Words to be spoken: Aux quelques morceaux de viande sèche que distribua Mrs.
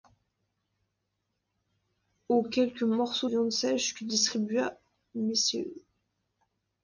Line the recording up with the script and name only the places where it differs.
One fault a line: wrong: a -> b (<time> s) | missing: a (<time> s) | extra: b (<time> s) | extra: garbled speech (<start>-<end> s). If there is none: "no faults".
missing: de (3.3 s)